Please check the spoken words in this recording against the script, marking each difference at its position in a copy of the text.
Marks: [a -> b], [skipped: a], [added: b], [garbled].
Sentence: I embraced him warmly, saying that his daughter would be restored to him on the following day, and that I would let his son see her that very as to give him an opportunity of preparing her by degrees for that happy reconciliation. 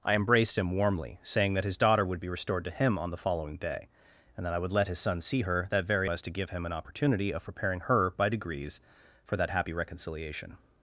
I embraced him warmly, saying that his daughter would be restored to him on the following day, and that I would let his son see her that very as to give him an opportunity of preparing her by degrees for that happy reconciliation.